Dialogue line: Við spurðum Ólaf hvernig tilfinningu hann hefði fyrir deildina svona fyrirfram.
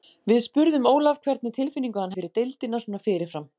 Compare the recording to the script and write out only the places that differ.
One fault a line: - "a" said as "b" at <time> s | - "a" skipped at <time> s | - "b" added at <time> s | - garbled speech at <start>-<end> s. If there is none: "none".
- "hefði" skipped at 2.2 s